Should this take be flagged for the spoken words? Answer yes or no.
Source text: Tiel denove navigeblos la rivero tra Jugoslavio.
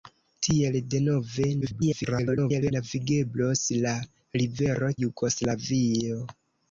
yes